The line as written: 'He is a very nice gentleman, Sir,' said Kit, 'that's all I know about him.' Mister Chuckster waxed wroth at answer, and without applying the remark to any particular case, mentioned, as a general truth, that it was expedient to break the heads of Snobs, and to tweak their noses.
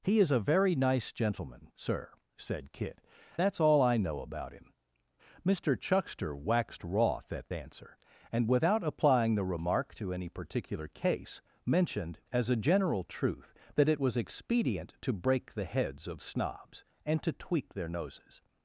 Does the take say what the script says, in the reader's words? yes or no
yes